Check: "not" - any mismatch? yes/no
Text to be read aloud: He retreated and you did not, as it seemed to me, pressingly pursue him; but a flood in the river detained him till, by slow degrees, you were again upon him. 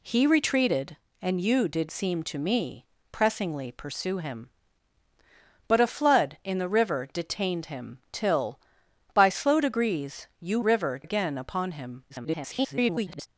yes